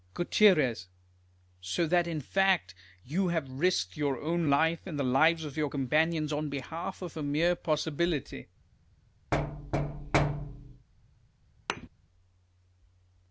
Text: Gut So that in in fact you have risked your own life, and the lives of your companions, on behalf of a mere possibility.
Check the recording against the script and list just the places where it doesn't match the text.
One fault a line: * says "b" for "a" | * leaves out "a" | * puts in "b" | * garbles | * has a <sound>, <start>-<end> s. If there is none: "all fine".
* leaves out "in"
* has a thud, 9.3-10.9 s
* has a thud, 11.7-11.9 s